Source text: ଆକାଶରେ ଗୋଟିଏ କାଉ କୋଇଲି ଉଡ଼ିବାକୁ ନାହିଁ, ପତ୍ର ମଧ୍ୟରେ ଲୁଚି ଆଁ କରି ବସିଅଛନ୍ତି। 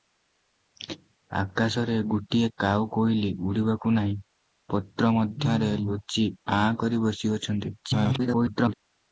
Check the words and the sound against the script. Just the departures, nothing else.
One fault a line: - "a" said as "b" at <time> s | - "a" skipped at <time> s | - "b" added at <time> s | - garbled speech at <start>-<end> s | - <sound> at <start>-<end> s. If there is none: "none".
- garbled speech at 7.8-8.7 s